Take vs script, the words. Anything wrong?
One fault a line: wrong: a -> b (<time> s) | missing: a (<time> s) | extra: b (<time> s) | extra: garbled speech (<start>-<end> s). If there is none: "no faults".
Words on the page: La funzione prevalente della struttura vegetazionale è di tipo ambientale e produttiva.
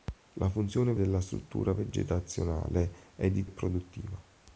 missing: prevalente (0.9 s)
missing: tipo ambientale (3.5 s)